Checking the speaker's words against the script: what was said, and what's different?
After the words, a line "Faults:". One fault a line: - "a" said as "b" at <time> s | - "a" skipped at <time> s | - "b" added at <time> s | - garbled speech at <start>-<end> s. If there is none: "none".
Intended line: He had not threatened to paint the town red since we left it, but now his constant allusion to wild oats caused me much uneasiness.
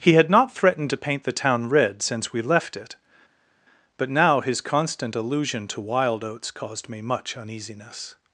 He had not threatened to paint the town red since we left it, but now his constant allusion to wild oats caused me much uneasiness.
Faults:
none